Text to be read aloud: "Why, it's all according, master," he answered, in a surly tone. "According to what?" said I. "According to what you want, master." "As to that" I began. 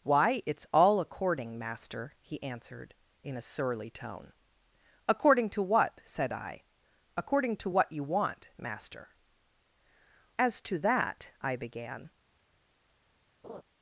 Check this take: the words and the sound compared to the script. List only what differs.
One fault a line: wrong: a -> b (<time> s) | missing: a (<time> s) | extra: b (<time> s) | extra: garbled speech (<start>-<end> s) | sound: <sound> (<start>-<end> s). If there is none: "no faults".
sound: laugh (13.4-13.6 s)